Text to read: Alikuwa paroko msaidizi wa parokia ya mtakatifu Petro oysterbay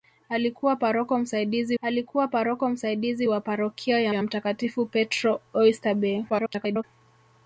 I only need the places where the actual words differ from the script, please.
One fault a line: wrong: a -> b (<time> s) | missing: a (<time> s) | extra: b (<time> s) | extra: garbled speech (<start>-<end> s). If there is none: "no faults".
extra: alikuwa paroko msaidizi (1.8 s)
extra: ya (4.1 s)
extra: garbled speech (6.3-6.8 s)